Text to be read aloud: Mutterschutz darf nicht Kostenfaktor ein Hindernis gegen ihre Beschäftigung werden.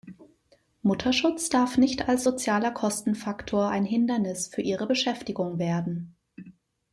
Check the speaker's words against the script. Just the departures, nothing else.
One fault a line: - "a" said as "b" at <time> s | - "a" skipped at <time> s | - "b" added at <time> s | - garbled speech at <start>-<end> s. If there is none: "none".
- "als sozialer" added at 2.1 s
- "gegen" said as "für" at 4.5 s